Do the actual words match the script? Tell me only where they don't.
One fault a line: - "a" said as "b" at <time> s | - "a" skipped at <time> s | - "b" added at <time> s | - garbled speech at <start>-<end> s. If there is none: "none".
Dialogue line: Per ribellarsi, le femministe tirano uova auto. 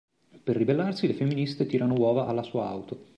- "alla sua" added at 2.2 s